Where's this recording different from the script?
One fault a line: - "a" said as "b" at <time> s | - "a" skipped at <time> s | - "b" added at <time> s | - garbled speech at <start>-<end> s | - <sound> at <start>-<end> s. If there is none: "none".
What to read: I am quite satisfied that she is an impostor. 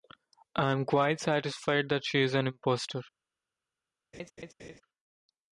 - laugh at 4.1-4.8 s